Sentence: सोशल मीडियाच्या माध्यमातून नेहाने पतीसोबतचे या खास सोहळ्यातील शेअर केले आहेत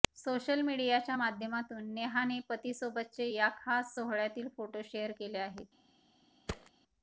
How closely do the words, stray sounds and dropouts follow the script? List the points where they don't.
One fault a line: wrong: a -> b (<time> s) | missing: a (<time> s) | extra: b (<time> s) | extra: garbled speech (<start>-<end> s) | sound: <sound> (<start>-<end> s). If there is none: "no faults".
extra: फोटो (4.6 s)
sound: thud (6.5-6.7 s)